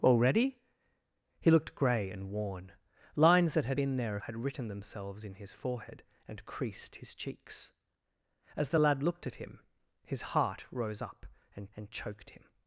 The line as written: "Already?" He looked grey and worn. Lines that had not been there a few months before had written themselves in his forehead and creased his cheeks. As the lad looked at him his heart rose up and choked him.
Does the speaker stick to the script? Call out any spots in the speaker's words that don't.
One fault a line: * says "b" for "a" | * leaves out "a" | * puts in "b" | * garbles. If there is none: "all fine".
* leaves out "not"
* leaves out "few months before"
* puts in "and"